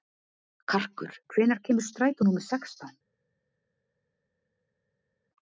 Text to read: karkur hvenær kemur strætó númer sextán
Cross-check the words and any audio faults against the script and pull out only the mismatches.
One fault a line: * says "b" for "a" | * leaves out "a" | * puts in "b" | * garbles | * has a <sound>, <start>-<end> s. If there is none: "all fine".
all fine